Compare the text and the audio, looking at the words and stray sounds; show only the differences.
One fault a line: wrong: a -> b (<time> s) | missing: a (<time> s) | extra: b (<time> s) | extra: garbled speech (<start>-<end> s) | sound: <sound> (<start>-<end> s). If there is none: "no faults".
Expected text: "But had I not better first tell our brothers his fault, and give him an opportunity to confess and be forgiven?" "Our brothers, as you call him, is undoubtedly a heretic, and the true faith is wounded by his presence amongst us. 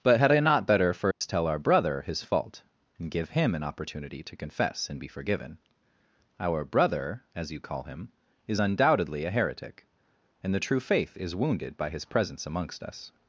sound: dropout (1.1-1.2 s)
wrong: brothers -> brother (1.6 s)
wrong: brothers -> brother (6.7 s)